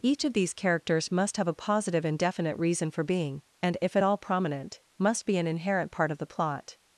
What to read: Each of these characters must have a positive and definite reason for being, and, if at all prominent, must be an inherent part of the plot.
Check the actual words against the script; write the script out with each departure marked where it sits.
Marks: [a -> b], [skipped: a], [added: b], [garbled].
Each of these characters must have a positive and definite reason for being, and, if at all prominent, must be an inherent part of the plot.